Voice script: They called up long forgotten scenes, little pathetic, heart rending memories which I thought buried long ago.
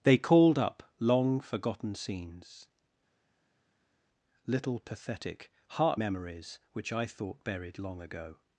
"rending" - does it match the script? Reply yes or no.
no